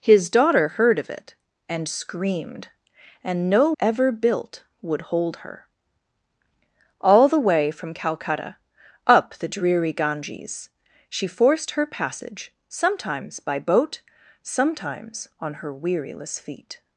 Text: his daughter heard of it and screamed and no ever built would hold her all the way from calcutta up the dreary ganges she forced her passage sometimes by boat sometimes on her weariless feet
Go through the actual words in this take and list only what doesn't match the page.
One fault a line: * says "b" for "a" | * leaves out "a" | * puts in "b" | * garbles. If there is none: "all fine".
all fine